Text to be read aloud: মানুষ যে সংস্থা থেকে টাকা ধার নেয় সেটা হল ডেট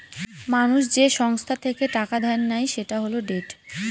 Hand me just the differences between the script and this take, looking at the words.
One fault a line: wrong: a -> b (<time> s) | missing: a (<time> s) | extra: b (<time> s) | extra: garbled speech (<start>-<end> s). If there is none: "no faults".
no faults